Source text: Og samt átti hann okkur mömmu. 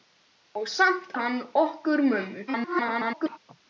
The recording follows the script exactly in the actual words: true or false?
false